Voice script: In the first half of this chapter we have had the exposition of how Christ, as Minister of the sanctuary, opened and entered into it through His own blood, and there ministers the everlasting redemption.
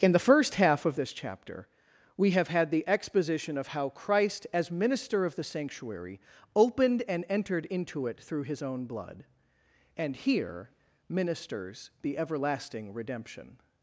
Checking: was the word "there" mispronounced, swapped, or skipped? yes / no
yes